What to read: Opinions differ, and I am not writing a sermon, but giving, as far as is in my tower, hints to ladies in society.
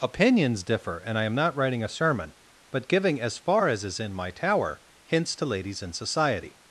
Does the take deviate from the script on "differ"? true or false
false